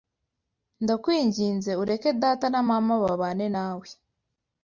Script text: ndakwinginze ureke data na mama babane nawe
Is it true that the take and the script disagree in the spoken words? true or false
false